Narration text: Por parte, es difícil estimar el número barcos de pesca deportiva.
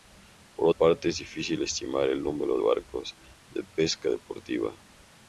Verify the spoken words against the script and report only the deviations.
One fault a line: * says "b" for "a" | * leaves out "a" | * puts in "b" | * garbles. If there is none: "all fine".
all fine